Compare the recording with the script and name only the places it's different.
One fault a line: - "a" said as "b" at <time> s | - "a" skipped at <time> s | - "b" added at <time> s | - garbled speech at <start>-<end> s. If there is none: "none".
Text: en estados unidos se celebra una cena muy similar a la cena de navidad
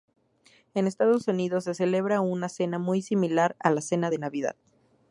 none